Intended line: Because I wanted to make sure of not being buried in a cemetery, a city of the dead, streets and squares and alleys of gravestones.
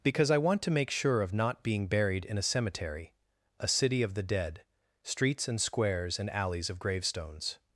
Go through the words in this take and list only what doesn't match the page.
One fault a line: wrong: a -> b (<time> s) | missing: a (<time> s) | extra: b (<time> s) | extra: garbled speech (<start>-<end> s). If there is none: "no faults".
wrong: wanted -> want (0.4 s)